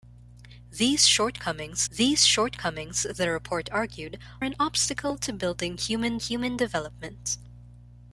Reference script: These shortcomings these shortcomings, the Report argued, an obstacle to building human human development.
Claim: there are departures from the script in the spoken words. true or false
false